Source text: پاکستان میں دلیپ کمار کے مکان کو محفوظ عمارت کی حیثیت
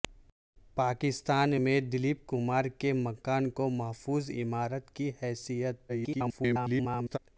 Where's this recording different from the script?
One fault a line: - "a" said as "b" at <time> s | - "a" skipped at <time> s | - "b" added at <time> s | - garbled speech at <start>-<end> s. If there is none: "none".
- garbled speech at 5.9-7.2 s